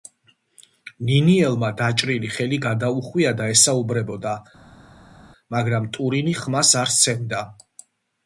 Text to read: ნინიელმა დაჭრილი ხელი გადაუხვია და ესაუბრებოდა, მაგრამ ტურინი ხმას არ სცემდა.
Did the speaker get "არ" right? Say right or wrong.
right